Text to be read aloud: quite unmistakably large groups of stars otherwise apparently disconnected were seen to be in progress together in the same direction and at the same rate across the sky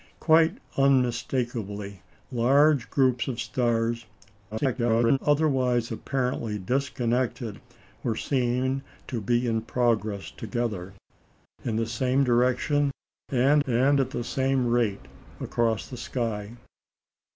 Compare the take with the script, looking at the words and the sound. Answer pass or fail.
fail